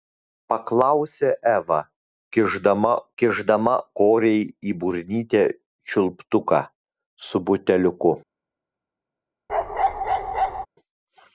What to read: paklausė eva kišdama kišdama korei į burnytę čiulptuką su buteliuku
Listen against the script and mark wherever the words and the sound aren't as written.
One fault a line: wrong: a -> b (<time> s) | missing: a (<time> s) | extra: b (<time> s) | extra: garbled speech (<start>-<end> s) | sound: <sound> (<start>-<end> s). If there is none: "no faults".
sound: bark (9.5-10.7 s)